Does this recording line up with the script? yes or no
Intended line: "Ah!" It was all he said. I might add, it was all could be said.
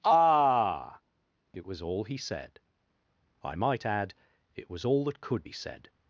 no